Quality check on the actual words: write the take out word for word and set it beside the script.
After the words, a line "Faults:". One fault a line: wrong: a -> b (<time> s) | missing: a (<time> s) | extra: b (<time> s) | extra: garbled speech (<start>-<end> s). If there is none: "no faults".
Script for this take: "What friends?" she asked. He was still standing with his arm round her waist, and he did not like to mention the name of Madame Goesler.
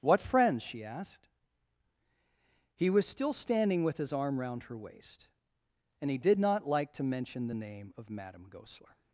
"What friends?" she asked. He was still standing with his arm round her waist, and he did not like to mention the name of Madame Goesler.
Faults:
no faults